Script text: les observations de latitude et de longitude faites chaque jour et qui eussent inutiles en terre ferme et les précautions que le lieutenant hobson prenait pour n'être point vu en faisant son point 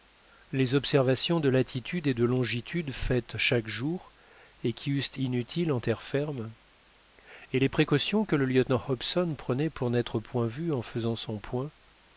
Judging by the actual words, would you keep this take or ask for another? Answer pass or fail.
pass